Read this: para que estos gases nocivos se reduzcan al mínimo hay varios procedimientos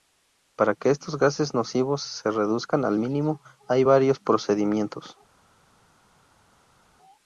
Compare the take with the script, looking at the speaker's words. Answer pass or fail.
pass